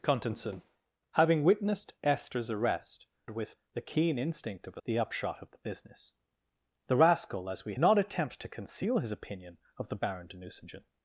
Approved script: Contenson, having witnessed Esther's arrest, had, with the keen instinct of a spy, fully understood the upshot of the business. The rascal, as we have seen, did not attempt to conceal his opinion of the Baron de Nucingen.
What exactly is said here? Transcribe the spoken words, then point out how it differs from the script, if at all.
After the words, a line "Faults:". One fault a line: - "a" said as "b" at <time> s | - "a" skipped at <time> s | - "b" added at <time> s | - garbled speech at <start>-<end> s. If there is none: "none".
Contenson, having witnessed Esther's arrest, with the keen instinct of a the upshot of the business. The rascal, as we not attempt to conceal his opinion of the Baron de Nucingen.
Faults:
- "had" skipped at 3.0 s
- "spy fully understood" skipped at 4.8 s
- "have seen did" skipped at 7.7 s